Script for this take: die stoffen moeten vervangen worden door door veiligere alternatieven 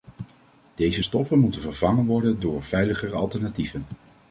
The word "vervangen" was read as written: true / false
true